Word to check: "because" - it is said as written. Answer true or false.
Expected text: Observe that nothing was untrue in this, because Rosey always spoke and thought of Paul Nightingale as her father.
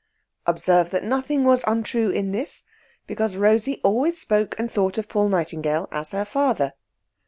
true